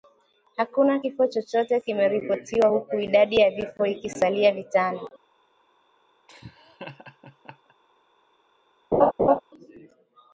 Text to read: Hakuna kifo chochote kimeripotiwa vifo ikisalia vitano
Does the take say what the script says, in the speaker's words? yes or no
no